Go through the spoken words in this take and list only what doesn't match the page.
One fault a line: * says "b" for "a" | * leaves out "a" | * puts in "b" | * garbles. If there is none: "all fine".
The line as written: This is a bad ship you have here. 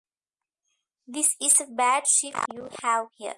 all fine